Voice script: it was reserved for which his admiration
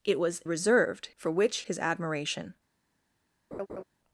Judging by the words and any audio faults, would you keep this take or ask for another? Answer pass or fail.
fail